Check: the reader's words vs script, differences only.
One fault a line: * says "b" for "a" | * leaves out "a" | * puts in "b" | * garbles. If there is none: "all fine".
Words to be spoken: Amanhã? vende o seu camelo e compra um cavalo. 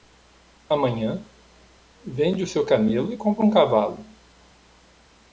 all fine